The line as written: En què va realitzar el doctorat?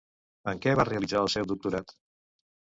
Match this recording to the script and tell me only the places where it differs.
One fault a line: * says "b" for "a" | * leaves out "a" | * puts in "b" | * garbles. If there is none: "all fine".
* puts in "seu"